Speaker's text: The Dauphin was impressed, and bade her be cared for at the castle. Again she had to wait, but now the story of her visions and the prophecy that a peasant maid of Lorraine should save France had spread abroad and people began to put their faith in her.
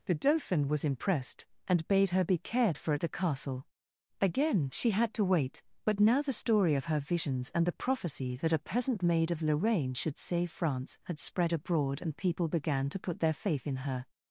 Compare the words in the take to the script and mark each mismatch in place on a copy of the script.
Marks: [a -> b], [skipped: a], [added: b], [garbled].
The Dauphin was impressed, and bade her be cared for at the castle. Again she had to wait, but now the story of her visions and the prophecy that a peasant maid of Lorraine should save France had spread abroad and people began to put their faith in her.